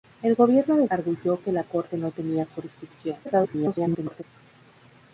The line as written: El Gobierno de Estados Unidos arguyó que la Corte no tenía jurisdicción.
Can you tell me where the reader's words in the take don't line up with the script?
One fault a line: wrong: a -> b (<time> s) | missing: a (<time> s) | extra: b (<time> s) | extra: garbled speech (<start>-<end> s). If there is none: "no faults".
missing: Estados Unidos (0.8 s)
extra: garbled speech (3.2-4.2 s)